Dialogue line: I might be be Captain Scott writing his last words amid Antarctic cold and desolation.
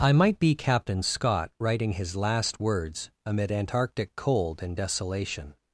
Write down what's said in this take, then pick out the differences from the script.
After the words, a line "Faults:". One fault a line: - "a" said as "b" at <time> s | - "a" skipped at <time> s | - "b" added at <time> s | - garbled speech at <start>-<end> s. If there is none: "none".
I might be Captain Scott writing his last words amid Antarctic cold and desolation.
Faults:
- "be" skipped at 0.6 s